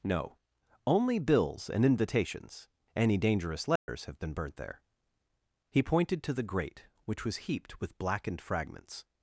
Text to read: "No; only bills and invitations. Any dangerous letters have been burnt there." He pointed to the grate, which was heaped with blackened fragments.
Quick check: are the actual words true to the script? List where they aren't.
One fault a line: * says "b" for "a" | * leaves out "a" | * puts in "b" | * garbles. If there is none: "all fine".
all fine